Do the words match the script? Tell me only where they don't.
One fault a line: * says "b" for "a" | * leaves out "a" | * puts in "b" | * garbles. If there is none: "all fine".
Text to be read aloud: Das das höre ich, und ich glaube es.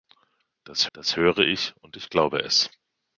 all fine